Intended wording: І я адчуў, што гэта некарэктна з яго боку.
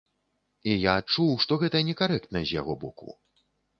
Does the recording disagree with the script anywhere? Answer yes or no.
no